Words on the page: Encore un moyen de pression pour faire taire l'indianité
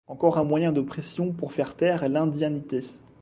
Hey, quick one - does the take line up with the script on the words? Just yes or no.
yes